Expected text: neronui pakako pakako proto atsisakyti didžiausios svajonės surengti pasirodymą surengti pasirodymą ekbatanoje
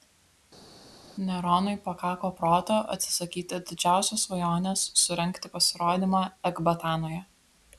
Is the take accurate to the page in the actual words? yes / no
no